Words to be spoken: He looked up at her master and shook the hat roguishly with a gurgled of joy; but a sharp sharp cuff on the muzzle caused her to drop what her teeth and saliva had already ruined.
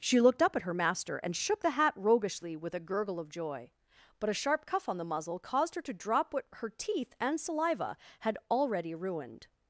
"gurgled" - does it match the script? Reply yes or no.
no